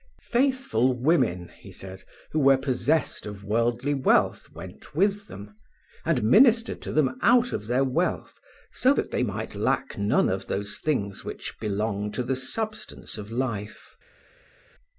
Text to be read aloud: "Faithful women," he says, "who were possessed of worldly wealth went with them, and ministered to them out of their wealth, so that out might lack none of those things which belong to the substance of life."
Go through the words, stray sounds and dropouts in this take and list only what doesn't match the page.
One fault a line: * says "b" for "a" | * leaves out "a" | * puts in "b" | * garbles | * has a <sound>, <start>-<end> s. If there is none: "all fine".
* says "they" for "out"